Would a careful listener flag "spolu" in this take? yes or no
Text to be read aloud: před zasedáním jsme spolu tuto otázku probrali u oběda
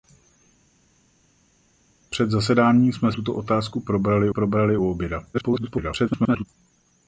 yes